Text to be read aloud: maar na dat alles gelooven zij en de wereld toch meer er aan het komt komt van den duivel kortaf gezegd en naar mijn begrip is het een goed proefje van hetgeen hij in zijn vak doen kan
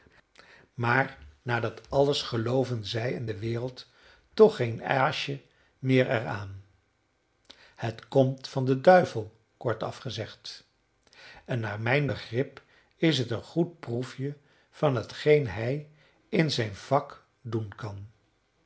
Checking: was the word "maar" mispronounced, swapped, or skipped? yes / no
no